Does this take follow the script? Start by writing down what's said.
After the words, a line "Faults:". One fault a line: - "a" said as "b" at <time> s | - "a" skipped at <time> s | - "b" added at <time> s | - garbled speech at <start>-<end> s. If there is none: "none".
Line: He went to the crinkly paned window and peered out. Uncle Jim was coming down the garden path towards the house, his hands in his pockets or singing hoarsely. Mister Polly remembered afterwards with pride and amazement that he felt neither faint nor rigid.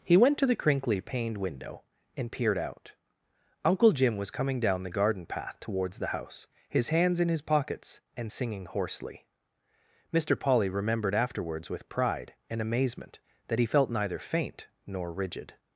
He went to the crinkly paned window and peered out. Uncle Jim was coming down the garden path towards the house, his hands in his pockets and singing hoarsely. Mister Polly remembered afterwards with pride and amazement that he felt neither faint nor rigid.
Faults:
- "or" said as "and" at 8.2 s